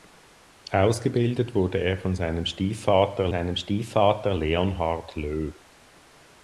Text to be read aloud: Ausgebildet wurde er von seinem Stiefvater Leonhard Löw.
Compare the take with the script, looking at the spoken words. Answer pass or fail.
fail